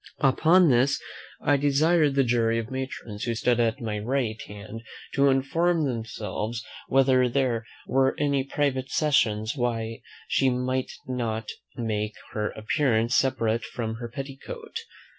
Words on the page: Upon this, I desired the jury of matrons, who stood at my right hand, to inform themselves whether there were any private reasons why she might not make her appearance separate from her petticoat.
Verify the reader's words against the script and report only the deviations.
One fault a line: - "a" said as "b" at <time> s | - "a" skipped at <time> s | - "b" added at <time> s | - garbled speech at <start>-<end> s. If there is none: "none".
none